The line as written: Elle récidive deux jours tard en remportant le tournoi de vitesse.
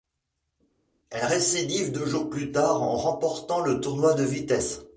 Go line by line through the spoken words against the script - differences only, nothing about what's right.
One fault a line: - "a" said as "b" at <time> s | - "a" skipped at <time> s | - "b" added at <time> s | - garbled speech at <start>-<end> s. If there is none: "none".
- "plus" added at 2.3 s